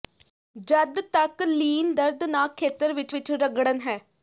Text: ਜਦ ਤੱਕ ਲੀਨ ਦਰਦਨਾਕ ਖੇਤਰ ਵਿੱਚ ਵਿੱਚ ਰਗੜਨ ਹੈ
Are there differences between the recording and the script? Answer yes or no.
no